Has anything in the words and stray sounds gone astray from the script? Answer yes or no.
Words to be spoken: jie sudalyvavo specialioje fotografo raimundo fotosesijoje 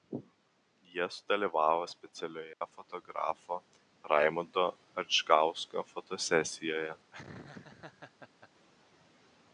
yes